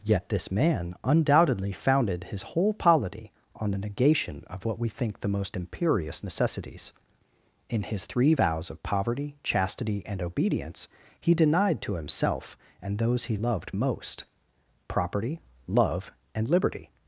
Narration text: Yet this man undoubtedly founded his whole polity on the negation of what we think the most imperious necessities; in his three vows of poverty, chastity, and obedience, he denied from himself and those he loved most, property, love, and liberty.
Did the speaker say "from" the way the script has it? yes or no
no